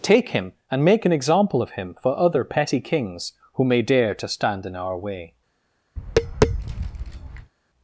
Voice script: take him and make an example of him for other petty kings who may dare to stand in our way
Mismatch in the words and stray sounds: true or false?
true